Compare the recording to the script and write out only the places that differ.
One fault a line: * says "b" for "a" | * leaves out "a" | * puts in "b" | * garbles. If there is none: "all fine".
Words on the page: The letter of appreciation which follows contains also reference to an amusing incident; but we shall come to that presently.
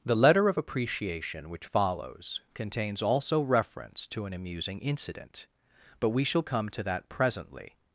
all fine